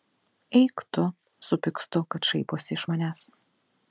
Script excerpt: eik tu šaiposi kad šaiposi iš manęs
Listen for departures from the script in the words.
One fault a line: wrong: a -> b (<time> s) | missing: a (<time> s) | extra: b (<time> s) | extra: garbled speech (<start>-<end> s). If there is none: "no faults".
wrong: šaiposi -> supykstu (1.5 s)